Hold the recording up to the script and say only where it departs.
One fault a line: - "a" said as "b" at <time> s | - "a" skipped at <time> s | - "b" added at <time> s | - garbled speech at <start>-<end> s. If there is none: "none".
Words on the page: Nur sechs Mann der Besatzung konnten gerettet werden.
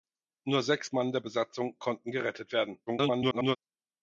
- garbled speech at 2.9-3.6 s